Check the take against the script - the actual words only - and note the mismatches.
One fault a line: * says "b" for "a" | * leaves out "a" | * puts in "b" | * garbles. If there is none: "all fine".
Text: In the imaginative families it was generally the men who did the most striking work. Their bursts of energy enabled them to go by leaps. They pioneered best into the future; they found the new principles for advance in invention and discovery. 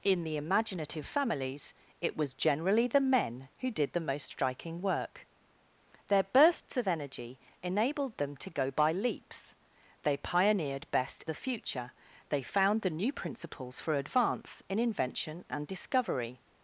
* leaves out "into"